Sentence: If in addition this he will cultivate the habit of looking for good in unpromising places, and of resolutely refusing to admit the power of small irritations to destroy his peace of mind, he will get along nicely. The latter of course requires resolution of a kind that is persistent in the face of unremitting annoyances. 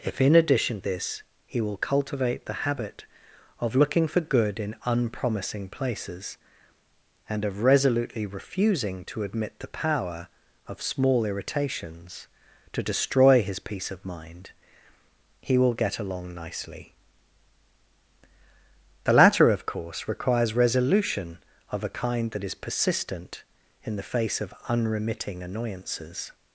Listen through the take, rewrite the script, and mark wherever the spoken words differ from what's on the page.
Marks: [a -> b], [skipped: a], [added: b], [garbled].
If in addition this he will cultivate the habit of looking for good in unpromising places, and of resolutely refusing to admit the power of small irritations to destroy his peace of mind, he will get along nicely. The latter of course requires resolution of a kind that is persistent in the face of unremitting annoyances.